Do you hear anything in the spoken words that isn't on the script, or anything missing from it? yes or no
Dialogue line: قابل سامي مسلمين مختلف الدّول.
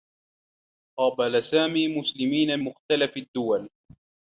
no